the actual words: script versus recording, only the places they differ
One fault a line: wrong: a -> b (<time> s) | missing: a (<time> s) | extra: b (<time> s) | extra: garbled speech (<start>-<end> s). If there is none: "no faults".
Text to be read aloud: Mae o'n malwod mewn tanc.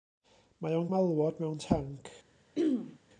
no faults